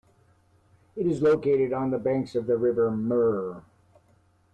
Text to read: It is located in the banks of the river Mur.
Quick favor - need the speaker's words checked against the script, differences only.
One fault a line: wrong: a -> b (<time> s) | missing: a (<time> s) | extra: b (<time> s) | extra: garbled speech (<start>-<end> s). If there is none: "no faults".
wrong: in -> on (1.7 s)